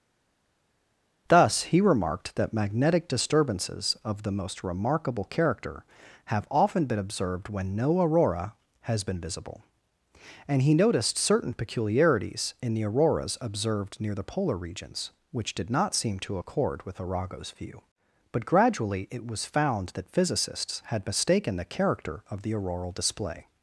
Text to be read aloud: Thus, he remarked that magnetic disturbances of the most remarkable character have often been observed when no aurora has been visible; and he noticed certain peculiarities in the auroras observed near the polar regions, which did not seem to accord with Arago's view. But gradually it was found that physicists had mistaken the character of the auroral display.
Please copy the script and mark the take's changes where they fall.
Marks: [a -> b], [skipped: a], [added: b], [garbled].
Thus, he remarked that magnetic disturbances of the most remarkable character have often been observed when no aurora has been visible; and he noticed certain peculiarities in the auroras observed near the polar regions, which did not seem to accord with Arago's view. But gradually it was found that physicists had mistaken the character of the auroral display.